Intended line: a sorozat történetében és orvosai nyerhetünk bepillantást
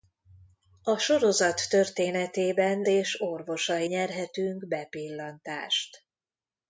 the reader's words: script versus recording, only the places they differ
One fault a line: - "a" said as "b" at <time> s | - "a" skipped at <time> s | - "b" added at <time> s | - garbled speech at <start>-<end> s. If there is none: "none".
none